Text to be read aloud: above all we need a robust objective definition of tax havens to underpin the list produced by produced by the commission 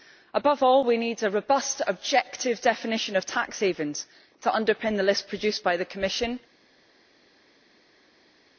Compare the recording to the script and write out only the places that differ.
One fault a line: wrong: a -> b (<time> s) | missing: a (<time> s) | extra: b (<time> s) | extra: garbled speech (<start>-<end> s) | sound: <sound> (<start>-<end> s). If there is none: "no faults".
missing: produced by (5.8 s)